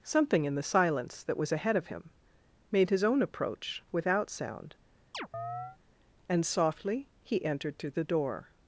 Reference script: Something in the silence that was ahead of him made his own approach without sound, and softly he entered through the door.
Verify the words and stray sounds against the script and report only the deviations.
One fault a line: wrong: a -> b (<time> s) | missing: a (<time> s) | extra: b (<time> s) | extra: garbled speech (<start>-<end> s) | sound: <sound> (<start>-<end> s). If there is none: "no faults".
sound: chirp (5.1-5.8 s)